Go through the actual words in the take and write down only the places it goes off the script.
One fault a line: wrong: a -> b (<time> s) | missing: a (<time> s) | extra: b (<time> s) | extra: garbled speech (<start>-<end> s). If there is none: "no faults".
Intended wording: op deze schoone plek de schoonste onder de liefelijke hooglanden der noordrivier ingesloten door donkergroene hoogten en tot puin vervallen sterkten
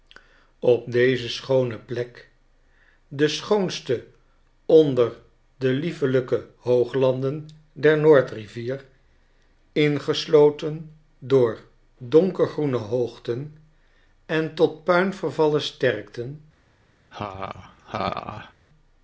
no faults